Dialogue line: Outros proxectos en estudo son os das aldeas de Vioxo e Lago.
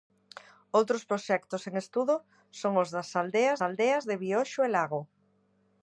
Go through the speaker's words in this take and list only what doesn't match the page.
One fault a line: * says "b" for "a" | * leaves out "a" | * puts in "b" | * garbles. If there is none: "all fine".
* puts in "aldeas"